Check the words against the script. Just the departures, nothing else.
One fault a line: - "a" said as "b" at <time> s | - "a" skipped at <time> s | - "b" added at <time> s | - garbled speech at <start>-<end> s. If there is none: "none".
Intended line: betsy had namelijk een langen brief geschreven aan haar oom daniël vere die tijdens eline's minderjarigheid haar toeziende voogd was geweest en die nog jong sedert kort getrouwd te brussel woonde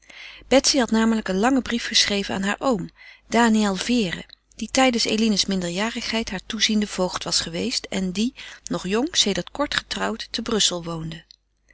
none